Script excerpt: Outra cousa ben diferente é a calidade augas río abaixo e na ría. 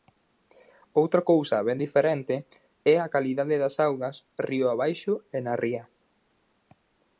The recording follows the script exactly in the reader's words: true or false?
false